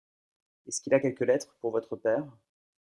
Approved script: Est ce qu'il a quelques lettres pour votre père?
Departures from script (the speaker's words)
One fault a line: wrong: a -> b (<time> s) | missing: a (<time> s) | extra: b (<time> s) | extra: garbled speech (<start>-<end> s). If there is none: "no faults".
no faults